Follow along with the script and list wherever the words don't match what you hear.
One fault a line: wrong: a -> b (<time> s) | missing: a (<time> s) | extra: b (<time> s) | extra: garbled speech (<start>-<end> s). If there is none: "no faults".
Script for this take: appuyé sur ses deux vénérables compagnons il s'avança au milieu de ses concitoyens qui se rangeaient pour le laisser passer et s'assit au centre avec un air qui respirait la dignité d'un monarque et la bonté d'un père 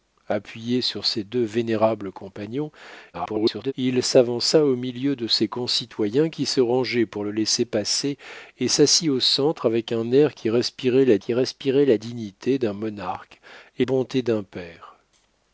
extra: garbled speech (3.1-3.7 s)
extra: qui respirait la (11.2 s)
missing: la (13.8 s)